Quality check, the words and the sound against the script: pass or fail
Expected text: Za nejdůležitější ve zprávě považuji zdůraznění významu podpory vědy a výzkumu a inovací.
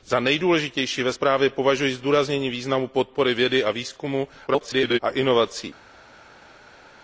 fail